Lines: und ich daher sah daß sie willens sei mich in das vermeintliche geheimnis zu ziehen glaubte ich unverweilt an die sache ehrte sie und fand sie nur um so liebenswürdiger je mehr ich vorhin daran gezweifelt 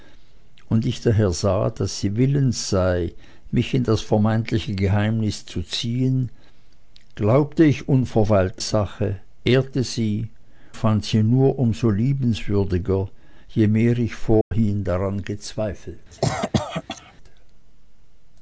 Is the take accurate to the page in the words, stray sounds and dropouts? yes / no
no